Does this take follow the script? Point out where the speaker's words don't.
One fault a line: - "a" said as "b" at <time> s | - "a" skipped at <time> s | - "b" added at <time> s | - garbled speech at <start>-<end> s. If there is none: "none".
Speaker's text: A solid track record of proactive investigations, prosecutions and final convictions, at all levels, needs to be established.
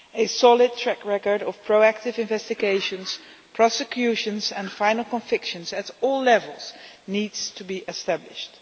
none